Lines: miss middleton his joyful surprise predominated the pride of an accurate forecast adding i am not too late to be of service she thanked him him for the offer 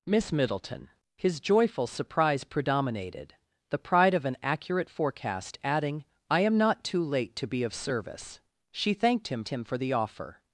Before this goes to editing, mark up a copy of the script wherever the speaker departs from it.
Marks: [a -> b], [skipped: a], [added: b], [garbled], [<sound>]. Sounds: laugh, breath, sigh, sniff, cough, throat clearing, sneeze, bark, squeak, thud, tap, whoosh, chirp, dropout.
miss middleton his joyful surprise predominated the pride of an accurate forecast adding i am not too late to be of service she thanked him him for the offer